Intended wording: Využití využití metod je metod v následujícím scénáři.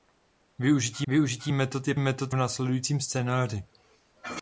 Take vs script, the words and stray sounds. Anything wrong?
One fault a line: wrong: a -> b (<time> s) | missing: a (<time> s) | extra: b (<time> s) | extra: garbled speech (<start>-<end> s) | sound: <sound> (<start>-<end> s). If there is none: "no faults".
no faults